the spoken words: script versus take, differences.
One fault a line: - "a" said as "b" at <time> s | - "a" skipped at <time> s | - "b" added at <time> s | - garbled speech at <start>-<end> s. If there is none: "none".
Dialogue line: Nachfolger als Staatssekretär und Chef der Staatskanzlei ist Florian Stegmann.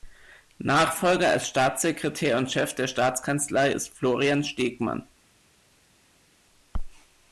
none